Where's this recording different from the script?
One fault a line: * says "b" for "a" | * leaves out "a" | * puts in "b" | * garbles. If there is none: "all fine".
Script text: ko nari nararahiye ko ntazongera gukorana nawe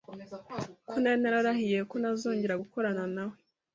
all fine